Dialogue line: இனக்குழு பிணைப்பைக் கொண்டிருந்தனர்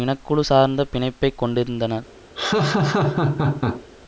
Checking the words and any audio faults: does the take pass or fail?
fail